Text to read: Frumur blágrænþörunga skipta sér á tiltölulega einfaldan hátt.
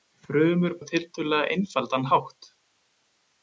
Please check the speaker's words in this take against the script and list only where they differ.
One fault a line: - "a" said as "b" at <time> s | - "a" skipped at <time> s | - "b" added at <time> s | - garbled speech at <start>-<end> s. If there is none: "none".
- "blágrænþörunga skipta sér" skipped at 0.7 s